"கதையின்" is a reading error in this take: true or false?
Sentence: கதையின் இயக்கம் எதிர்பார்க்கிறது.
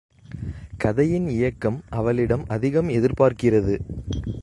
false